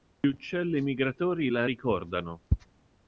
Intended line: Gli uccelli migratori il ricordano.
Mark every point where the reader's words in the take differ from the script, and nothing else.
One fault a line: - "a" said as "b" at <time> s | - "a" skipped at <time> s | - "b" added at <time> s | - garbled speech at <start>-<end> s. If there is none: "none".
- "il" said as "la" at 1.5 s